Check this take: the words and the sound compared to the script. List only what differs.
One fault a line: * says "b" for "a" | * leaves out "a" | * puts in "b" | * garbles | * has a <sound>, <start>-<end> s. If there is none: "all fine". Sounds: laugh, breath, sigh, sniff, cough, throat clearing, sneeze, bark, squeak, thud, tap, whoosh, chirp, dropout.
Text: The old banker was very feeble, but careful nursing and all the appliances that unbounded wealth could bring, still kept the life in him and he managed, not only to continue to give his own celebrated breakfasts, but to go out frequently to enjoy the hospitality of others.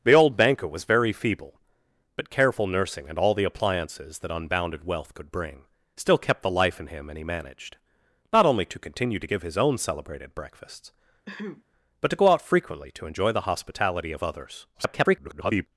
* has a throat clearing, 11.3-11.6 s
* garbles